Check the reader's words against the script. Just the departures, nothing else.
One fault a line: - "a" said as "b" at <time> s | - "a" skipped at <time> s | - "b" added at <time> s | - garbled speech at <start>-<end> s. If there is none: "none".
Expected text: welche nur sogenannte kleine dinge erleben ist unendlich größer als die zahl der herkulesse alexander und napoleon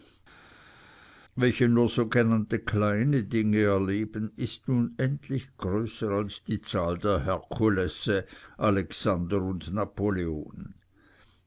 none